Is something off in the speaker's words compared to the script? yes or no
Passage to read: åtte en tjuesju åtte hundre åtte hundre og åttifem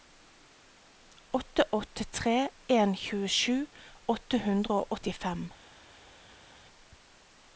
yes